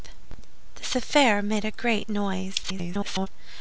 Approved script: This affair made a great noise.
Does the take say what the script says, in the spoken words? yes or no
no